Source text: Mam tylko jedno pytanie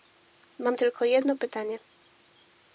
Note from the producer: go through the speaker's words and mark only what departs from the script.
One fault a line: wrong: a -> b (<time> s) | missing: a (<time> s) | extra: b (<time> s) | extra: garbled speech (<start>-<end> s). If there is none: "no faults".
no faults